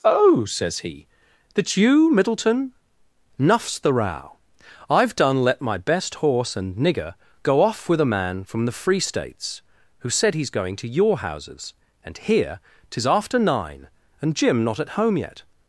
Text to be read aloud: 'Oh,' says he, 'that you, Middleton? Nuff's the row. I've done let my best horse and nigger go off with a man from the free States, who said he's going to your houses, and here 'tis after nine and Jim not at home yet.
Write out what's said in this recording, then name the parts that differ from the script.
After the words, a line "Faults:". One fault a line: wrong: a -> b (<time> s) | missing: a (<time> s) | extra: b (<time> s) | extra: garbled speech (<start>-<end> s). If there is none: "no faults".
'Oh,' says he, 'that you, Middleton? Nuff's the row. I've done let my best horse and nigger go off with a man from the free States, who said he's going to your houses, and here 'tis after nine and Jim not at home yet.
Faults:
no faults